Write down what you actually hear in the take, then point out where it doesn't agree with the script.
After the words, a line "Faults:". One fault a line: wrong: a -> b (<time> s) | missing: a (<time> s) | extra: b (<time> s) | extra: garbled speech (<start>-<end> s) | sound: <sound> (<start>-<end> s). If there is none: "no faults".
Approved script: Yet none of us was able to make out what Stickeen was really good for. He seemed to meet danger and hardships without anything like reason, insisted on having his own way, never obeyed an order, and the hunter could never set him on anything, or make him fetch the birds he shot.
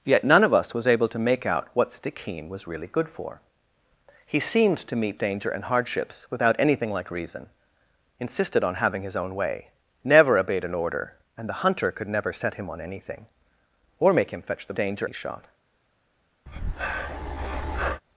Yet none of us was able to make out what Stickeen was really good for. He seemed to meet danger and hardships without anything like reason, insisted on having his own way, never obeyed an order, and the hunter could never set him on anything, or make him fetch the danger he shot.
Faults:
wrong: birds -> danger (14.8 s)
sound: breath (16.5-18.0 s)